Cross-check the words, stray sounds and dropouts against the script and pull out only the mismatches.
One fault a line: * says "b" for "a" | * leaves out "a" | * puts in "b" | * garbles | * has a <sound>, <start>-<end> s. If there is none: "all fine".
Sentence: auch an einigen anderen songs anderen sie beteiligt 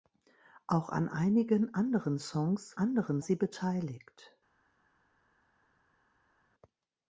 all fine